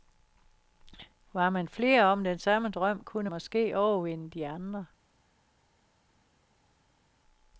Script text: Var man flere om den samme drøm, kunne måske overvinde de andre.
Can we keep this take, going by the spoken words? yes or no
yes